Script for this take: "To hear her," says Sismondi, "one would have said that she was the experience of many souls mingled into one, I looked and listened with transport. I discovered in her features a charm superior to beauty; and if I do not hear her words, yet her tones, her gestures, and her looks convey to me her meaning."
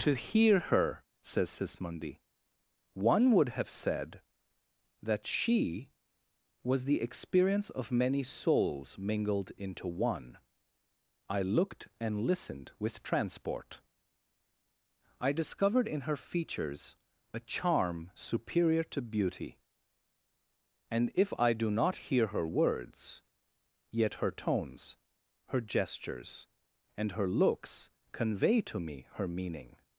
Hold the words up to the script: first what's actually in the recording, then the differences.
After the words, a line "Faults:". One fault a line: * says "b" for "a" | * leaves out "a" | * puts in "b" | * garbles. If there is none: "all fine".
"To hear her," says Sismondi, "one would have said that she was the experience of many souls mingled into one, I looked and listened with transport. I discovered in her features a charm superior to beauty; and if I do not hear her words, yet her tones, her gestures, and her looks convey to me her meaning."
Faults:
all fine